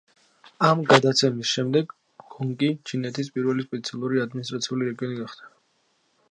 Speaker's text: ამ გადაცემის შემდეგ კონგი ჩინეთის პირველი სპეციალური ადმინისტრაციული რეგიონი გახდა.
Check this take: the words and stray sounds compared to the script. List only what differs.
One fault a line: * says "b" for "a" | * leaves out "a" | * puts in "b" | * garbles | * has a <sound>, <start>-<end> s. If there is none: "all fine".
all fine